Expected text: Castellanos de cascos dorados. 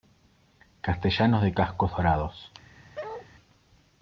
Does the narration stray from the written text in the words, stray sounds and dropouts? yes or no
yes